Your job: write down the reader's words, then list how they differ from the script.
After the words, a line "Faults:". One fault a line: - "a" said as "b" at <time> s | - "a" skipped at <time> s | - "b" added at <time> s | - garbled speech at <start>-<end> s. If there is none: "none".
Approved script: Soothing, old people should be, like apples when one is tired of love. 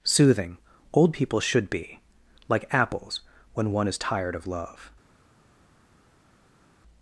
Soothing, old people should be, like apples when one is tired of love.
Faults:
none